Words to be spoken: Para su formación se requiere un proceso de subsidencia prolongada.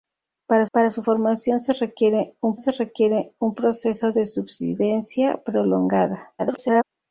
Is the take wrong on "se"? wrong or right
right